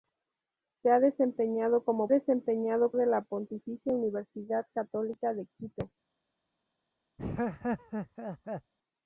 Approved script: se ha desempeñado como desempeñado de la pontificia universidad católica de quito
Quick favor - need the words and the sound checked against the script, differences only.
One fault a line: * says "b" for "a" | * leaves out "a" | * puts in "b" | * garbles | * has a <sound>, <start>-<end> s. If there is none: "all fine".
* has a laugh, 7.2-8.7 s